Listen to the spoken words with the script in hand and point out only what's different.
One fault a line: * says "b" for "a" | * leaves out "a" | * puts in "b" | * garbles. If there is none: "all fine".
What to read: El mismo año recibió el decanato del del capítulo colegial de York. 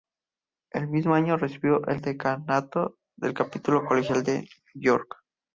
* leaves out "del"